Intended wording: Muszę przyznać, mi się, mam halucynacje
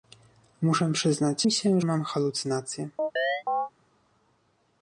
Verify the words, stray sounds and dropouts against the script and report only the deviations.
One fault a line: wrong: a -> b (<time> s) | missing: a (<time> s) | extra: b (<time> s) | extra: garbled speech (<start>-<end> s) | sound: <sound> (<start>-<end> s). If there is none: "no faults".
sound: chirp (3.0-3.7 s)